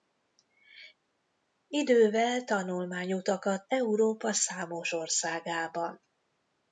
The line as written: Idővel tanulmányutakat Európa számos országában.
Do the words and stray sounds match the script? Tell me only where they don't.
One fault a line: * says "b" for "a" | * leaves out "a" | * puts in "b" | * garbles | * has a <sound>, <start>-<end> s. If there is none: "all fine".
all fine